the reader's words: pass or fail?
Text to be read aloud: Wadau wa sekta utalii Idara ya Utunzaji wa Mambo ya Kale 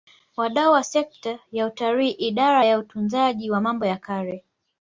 fail